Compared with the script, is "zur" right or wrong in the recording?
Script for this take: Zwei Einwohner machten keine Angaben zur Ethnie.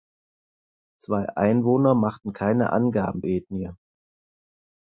wrong